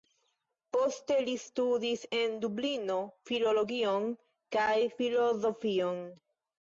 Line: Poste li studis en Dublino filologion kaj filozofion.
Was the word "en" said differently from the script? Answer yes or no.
no